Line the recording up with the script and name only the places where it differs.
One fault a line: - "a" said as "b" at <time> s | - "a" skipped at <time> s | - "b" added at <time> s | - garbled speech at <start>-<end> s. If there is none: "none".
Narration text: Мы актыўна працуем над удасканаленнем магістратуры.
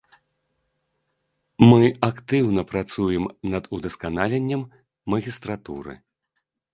none